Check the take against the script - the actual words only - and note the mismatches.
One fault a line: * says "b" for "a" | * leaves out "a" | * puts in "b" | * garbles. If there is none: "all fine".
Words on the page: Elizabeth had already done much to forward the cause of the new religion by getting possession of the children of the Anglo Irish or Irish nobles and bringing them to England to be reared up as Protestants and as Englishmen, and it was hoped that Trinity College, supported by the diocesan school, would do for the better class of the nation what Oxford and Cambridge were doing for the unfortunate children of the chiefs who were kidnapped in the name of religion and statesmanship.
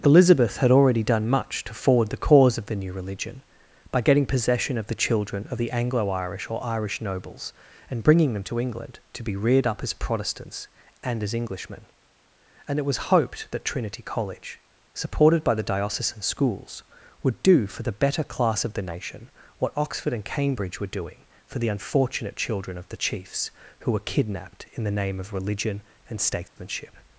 * says "schools" for "school"